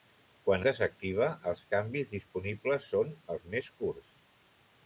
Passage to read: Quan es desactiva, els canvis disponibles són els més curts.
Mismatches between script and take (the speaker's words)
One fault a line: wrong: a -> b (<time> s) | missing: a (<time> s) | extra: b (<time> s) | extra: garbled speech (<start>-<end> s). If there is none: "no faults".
missing: es (0.6 s)